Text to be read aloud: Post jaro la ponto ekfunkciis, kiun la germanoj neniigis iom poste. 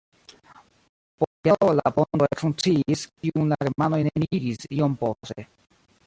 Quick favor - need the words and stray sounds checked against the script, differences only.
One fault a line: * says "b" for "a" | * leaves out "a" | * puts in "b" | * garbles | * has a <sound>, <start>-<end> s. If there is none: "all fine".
all fine